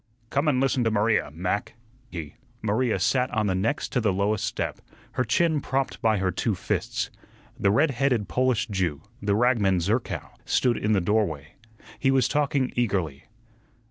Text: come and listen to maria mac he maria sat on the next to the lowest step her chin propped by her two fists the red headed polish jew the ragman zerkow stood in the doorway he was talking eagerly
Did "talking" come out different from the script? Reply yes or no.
no